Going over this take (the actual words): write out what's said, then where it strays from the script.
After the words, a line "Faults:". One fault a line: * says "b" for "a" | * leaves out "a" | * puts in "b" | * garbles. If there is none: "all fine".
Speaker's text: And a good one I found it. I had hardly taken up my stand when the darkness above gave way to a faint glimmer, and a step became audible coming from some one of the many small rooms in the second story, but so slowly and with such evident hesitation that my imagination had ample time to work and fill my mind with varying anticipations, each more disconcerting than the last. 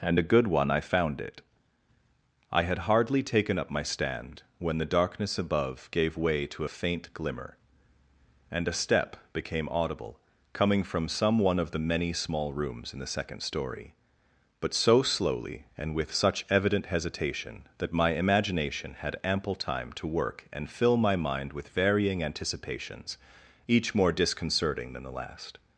And a good one I found it. I had hardly taken up my stand when the darkness above gave way to a faint glimmer, and a step became audible coming from some one of the many small rooms in the second story, but so slowly and with such evident hesitation that my imagination had ample time to work and fill my mind with varying anticipations, each more disconcerting than the last.
Faults:
all fine